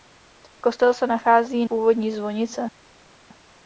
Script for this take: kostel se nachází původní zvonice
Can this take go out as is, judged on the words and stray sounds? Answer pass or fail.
pass